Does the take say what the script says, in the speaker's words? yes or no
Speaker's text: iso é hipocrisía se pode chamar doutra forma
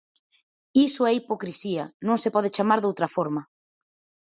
no